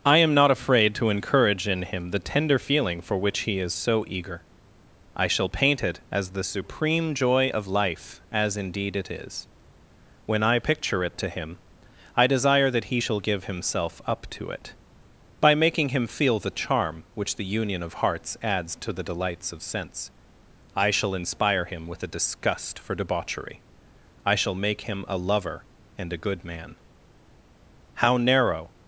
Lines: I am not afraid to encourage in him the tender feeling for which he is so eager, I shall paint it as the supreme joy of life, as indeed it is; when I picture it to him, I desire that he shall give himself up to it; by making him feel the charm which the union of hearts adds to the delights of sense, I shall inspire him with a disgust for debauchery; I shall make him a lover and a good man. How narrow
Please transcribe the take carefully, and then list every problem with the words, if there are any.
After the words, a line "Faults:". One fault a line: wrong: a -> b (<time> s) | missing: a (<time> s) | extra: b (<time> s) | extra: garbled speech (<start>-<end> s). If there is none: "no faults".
I am not afraid to encourage in him the tender feeling for which he is so eager, I shall paint it as the supreme joy of life, as indeed it is; when I picture it to him, I desire that he shall give himself up to it; by making him feel the charm which the union of hearts adds to the delights of sense, I shall inspire him with a disgust for debauchery; I shall make him a lover and a good man. How narrow
Faults:
no faults